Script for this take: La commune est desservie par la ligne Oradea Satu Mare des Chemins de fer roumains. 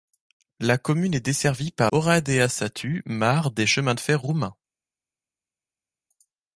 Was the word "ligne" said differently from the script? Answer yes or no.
yes